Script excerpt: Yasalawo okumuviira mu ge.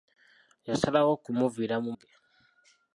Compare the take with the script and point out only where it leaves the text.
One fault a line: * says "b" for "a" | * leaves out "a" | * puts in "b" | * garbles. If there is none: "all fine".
all fine